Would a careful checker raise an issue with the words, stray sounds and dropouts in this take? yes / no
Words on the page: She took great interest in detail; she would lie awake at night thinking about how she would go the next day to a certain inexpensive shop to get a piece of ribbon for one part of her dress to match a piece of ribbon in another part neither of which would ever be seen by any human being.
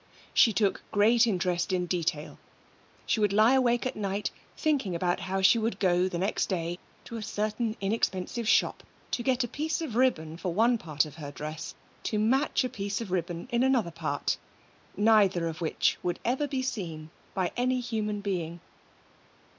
no